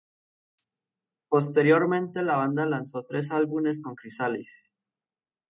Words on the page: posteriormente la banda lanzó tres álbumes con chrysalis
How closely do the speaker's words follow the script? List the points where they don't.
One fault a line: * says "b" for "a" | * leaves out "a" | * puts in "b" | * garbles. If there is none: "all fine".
all fine